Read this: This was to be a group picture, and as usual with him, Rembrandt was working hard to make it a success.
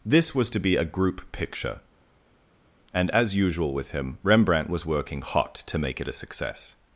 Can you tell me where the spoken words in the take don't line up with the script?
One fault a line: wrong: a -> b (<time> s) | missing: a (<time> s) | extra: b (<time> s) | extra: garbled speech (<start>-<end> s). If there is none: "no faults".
wrong: hard -> hot (5.2 s)